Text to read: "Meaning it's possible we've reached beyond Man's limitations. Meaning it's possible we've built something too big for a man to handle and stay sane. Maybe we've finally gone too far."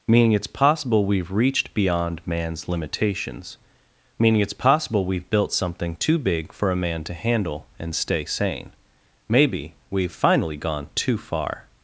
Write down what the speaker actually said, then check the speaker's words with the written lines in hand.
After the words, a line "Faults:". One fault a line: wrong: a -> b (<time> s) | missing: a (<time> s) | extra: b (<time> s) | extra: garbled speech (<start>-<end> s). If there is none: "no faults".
"Meaning it's possible we've reached beyond Man's limitations. Meaning it's possible we've built something too big for a man to handle and stay sane. Maybe we've finally gone too far."
Faults:
no faults